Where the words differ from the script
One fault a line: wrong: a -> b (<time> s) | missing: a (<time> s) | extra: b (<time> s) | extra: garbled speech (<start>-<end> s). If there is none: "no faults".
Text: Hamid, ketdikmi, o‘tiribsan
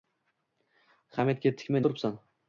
no faults